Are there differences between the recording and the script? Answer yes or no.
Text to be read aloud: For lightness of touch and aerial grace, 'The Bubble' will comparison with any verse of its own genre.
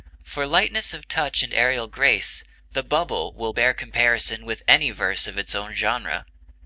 yes